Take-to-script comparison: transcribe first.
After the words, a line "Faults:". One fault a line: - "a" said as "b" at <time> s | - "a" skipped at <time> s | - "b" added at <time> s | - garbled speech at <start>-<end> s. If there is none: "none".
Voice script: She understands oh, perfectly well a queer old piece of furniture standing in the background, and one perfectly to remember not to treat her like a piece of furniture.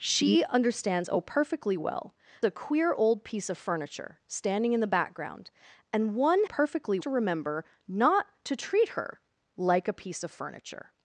She understands oh, perfectly well a queer old piece of furniture standing in the background, and one perfectly to remember not to treat her like a piece of furniture.
Faults:
none